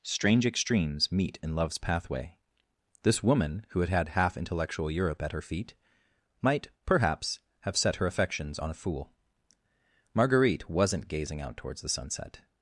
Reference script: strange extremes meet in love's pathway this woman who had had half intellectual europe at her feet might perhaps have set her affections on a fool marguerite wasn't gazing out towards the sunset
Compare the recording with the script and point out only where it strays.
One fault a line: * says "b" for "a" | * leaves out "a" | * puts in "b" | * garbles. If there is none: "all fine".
all fine